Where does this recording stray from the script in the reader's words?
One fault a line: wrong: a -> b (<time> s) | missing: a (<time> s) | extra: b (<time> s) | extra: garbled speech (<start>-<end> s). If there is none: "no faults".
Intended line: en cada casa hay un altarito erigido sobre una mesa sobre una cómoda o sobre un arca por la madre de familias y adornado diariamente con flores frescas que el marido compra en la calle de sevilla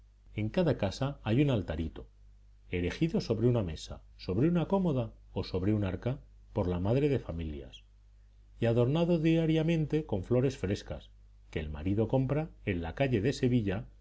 no faults